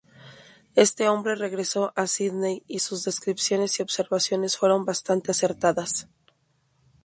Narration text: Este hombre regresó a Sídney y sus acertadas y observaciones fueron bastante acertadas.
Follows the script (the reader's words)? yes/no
no